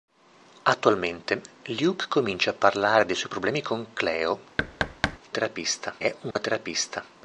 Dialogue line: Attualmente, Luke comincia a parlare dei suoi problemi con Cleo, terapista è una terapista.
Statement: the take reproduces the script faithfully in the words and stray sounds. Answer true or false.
false